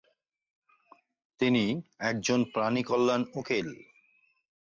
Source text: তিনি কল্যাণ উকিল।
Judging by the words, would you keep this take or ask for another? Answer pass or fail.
fail